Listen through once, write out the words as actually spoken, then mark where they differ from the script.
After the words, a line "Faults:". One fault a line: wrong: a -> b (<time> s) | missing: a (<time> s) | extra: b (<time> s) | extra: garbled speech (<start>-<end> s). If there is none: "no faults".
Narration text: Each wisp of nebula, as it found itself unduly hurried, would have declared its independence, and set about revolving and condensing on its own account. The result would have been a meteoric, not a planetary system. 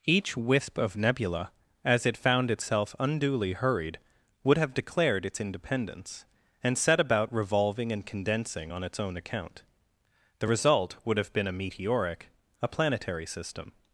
Each wisp of nebula, as it found itself unduly hurried, would have declared its independence, and set about revolving and condensing on its own account. The result would have been a meteoric, a planetary system.
Faults:
missing: not (12.3 s)